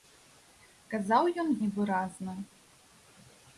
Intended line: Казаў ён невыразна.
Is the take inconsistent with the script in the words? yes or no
no